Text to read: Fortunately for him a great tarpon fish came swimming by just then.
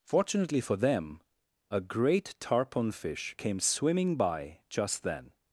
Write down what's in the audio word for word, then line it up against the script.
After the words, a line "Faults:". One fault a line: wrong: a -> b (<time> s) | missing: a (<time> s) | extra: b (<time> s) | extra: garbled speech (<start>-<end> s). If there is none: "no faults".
Fortunately for them a great tarpon fish came swimming by just then.
Faults:
wrong: him -> them (0.8 s)